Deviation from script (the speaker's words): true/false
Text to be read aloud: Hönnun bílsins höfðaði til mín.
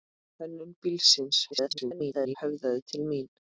true